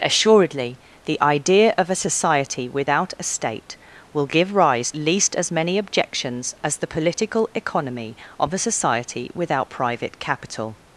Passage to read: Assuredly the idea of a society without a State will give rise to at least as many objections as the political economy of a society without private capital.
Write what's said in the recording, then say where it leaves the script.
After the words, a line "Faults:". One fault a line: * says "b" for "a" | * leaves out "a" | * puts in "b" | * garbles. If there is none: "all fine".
Assuredly the idea of a society without a State will give rise least as many objections as the political economy of a society without private capital.
Faults:
* leaves out "to at"